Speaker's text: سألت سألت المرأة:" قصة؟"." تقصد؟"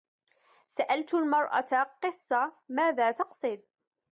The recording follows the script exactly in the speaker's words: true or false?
false